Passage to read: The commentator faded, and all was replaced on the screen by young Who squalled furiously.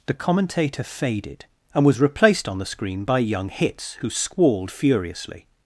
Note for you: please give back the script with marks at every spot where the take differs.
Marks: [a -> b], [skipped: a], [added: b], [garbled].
The commentator faded, and [skipped: all] was replaced on the screen by young [added: Hitz] Who squalled furiously.